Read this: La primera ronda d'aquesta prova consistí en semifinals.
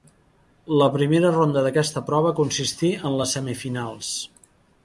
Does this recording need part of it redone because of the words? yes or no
yes